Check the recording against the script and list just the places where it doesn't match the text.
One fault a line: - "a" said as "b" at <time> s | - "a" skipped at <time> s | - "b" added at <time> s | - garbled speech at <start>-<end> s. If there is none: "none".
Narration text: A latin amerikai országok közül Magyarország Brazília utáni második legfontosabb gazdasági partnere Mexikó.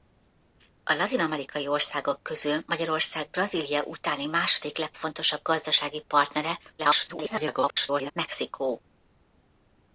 - garbled speech at 6.8-8.1 s